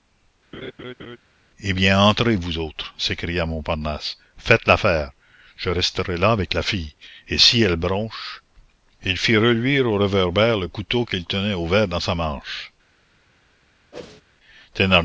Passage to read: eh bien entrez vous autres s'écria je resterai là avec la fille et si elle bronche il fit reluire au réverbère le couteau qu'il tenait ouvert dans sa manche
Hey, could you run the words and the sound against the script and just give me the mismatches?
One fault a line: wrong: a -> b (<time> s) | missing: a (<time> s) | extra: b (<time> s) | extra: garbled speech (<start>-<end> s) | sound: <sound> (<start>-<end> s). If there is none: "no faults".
sound: laugh (0.5-1.2 s)
extra: montparnasse faites l'affaire (3.5 s)
sound: whoosh (13.9-14.2 s)